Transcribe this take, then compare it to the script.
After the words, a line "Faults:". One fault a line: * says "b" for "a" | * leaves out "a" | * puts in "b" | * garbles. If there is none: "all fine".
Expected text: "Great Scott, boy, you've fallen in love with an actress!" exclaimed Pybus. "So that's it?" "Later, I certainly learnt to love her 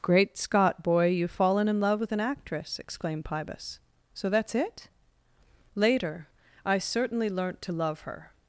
"Great Scott, boy, you've fallen in love with an actress!" exclaimed Pybus. "So that's it?" "Later, I certainly learnt to love her
Faults:
all fine